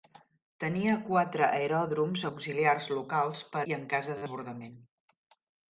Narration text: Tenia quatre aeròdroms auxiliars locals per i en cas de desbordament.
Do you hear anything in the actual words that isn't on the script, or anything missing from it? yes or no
no